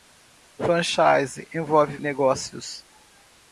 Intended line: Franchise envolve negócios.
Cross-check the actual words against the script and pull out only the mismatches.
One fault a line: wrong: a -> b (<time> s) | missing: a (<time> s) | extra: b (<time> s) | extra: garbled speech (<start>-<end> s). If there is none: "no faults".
no faults